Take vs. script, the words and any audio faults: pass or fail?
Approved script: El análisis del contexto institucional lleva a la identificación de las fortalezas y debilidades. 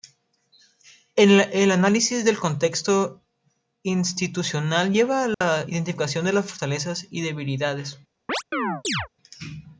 fail